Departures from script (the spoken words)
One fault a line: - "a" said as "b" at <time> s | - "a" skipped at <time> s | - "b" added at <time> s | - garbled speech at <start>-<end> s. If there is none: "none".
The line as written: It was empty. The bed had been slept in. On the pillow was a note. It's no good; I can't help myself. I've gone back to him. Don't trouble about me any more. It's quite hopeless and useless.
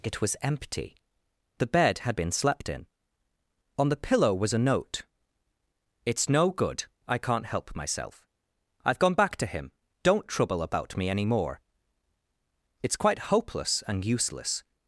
none